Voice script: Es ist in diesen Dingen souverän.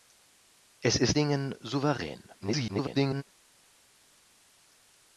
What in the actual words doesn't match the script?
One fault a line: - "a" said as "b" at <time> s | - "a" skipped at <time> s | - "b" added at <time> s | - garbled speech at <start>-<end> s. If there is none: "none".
- "in diesen" skipped at 1.2 s
- garbled speech at 2.4-3.2 s